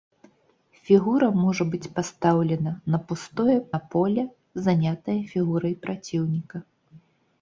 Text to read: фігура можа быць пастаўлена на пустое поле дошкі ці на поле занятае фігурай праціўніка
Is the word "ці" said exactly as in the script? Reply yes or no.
no